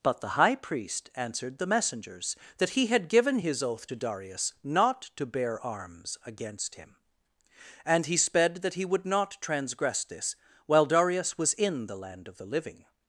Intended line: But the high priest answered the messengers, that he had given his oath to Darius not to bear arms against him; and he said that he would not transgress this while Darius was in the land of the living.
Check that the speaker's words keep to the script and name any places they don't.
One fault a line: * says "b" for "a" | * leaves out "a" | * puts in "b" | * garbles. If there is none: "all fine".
* says "sped" for "said"